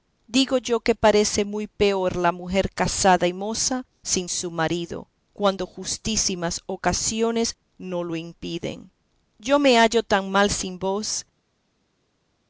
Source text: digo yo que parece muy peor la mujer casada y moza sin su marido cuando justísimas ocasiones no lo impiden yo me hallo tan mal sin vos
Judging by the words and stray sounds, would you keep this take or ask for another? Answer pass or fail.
pass